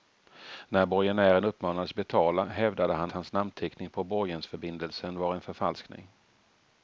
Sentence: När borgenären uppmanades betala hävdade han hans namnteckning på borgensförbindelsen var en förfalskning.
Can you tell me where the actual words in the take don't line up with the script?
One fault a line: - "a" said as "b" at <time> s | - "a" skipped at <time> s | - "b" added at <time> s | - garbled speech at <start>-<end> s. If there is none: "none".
none